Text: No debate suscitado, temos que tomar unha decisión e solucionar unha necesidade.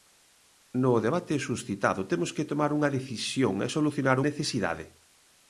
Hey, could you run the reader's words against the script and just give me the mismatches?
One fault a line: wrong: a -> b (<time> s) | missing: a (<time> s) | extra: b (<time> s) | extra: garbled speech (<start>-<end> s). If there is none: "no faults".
missing: unha (4.2 s)